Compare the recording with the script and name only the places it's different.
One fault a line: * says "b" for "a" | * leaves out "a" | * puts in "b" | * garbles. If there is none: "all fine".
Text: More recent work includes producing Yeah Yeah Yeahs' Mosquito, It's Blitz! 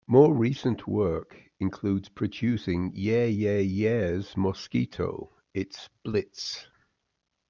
all fine